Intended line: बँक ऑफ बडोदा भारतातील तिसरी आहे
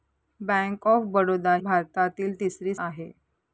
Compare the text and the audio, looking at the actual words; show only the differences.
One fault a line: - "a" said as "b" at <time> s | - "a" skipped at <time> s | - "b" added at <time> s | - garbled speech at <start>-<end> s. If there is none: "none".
none